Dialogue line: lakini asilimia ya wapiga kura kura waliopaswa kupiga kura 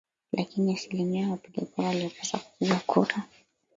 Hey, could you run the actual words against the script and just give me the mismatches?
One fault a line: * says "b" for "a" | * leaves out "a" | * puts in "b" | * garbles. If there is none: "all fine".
* leaves out "kura"